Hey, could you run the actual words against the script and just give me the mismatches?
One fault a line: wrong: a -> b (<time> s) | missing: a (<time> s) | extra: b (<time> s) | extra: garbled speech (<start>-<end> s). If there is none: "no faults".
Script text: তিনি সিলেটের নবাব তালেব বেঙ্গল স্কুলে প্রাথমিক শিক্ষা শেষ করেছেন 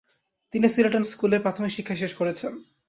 missing: নবাব তালেব বেঙ্গল (1.1 s)